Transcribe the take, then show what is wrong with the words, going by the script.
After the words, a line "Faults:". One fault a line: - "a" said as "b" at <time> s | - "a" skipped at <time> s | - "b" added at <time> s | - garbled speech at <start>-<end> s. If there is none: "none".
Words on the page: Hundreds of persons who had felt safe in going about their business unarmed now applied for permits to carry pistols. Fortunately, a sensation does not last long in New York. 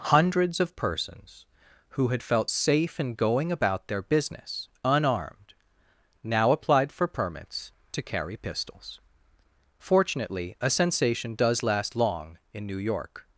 Hundreds of persons who had felt safe in going about their business unarmed now applied for permits to carry pistols. Fortunately, a sensation does last long in New York.
Faults:
- "not" skipped at 11.6 s